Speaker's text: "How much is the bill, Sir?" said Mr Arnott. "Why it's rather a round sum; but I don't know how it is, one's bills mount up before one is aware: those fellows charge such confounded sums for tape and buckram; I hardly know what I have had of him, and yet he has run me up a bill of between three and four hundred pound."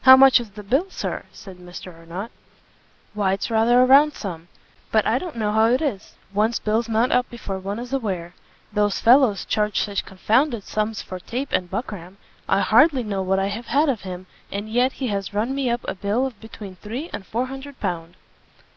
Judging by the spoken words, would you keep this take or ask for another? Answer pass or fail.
pass